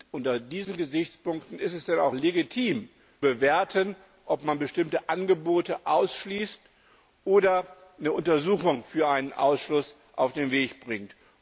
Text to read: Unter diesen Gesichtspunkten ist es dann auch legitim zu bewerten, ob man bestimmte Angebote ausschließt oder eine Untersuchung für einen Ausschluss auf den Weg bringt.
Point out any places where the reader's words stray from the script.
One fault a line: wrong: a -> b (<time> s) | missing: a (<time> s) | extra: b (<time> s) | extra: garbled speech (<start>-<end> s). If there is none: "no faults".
missing: zu (2.9 s)